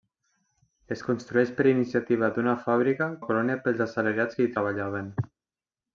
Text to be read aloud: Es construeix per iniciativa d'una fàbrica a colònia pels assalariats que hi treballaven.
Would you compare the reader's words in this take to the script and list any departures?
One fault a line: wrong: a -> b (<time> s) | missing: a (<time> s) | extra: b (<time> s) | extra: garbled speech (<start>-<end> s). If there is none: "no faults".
no faults